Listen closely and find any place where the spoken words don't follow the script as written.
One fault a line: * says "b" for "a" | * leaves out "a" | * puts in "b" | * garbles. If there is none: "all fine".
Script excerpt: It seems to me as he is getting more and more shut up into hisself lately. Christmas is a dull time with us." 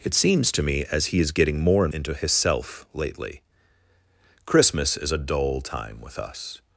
* leaves out "more shut up"